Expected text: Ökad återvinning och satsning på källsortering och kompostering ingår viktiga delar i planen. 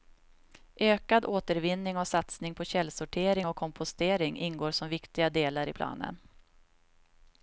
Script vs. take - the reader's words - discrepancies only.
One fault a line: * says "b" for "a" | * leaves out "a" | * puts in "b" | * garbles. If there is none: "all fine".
* puts in "som"